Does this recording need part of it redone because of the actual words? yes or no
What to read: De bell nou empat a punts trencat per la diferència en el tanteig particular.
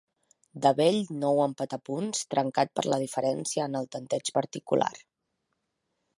no